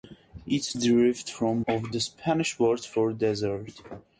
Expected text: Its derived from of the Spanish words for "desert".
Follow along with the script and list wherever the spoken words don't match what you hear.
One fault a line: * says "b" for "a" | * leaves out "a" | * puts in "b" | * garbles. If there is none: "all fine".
all fine